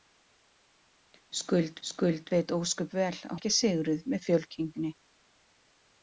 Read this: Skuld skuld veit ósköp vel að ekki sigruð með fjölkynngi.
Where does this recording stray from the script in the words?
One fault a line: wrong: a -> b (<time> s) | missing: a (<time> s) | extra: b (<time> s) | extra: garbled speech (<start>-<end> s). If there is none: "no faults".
no faults